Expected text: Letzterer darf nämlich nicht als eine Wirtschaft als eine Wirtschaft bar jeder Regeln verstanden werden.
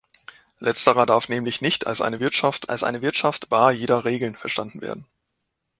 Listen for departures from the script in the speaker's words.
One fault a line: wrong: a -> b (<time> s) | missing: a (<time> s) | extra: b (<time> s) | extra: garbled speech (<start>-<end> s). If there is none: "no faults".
no faults